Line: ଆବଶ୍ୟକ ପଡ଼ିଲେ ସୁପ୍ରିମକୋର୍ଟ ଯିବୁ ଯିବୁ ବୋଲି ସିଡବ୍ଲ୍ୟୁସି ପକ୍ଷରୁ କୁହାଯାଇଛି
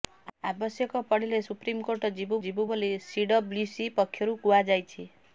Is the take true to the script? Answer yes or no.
yes